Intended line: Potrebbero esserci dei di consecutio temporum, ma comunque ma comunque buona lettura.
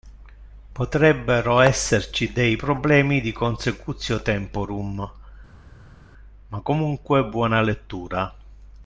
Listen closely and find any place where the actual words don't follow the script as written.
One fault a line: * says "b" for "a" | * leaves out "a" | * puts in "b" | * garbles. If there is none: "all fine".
* puts in "problemi"
* leaves out "ma comunque"